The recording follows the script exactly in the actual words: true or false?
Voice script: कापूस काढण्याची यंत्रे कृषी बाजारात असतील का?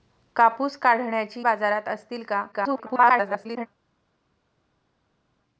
false